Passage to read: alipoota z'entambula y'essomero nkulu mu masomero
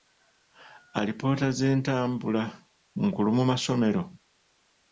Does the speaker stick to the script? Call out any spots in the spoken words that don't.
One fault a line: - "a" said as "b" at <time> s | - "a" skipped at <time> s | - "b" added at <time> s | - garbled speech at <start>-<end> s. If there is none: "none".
- "y'essomero" skipped at 2.4 s